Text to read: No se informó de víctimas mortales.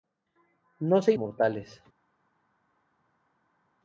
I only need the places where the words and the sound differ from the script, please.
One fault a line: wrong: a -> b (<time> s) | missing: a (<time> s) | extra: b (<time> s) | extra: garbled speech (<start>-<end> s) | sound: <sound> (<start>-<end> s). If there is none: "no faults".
missing: informó de víctimas (1.1 s)